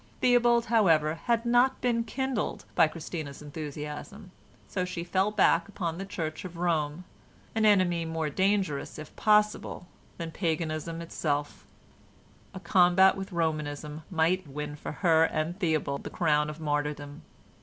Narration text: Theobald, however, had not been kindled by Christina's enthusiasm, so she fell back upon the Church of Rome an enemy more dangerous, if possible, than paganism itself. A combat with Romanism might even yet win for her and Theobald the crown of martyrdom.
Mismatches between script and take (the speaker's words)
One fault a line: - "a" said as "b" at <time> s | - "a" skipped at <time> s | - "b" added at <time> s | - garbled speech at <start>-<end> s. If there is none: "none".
- "even yet" skipped at 14.4 s